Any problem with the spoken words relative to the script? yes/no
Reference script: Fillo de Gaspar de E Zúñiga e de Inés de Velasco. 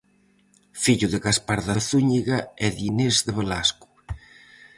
no